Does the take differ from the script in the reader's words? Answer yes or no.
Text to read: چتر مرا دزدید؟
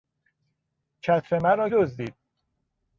no